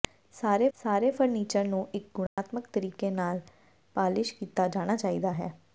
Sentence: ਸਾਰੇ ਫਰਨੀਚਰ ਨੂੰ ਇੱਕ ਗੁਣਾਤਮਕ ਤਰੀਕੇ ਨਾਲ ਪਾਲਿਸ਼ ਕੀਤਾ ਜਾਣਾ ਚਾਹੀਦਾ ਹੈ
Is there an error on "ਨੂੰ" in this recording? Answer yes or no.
no